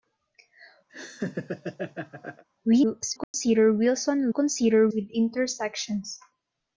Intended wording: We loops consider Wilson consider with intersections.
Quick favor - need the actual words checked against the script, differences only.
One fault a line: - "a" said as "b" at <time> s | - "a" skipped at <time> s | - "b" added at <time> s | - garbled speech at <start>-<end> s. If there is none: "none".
none